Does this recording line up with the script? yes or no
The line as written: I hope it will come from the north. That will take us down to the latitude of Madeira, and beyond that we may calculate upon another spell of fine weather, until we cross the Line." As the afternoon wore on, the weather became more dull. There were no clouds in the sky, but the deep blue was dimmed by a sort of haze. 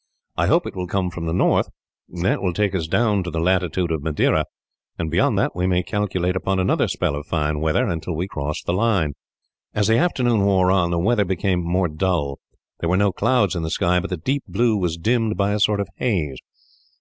yes